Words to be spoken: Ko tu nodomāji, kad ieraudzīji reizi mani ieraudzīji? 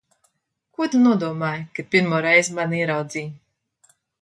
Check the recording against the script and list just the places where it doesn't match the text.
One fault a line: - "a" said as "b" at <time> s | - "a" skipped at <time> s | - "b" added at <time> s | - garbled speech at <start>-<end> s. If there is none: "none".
- "ieraudzīji" said as "pirmo" at 2.0 s